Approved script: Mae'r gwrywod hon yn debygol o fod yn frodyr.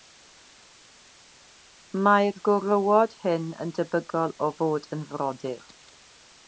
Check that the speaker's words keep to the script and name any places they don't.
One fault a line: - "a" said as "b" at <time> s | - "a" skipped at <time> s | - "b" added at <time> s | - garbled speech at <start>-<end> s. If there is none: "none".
- "hon" said as "hyn" at 3.3 s